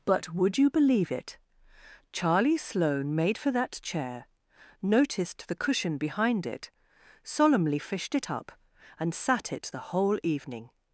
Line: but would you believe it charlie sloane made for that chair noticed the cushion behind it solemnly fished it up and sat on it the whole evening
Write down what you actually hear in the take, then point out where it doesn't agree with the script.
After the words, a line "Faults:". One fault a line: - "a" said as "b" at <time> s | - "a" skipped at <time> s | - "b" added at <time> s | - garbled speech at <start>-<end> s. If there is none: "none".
but would you believe it charlie sloane made for that chair noticed the cushion behind it solemnly fished it up and sat it the whole evening
Faults:
- "on" skipped at 9.5 s